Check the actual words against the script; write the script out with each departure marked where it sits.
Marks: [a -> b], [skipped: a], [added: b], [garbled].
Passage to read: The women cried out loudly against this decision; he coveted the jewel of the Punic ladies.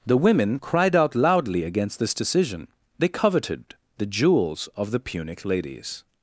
The women cried out loudly against this decision; [he -> they] coveted the [jewel -> jewels] of the Punic ladies.